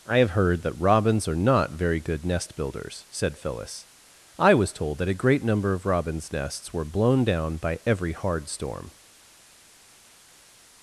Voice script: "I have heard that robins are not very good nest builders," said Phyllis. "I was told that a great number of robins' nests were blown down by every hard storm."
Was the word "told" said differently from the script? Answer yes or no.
no